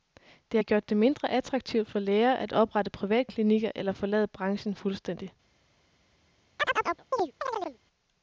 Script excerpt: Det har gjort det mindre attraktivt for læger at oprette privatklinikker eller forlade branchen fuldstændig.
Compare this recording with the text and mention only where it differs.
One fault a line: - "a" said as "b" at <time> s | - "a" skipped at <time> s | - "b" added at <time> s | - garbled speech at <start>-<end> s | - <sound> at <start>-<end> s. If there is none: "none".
- chirp at 6.6-7.8 s